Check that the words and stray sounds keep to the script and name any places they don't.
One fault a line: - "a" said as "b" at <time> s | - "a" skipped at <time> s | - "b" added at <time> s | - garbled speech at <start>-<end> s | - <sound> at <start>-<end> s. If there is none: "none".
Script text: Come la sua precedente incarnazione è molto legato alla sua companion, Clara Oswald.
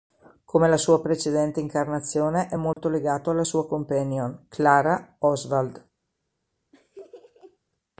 - dropout at 2.7-2.8 s
- laugh at 6.7-7.6 s